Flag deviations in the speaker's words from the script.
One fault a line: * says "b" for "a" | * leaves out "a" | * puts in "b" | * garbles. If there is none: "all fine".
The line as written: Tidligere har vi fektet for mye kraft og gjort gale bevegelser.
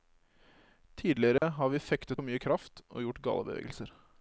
all fine